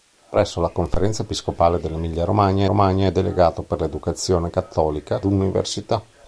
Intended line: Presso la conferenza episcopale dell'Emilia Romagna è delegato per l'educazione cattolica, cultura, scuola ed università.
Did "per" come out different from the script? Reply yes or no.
no